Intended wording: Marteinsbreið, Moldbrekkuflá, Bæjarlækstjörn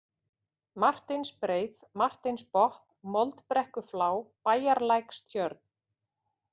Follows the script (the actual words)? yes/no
no